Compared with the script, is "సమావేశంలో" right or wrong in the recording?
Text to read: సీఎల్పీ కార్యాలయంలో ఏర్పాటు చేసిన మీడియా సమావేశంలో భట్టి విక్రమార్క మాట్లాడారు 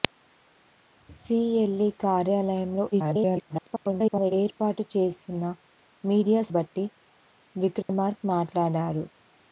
wrong